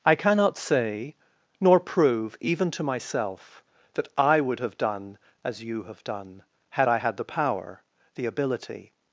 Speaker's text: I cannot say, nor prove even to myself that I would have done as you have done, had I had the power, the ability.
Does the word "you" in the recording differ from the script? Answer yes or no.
no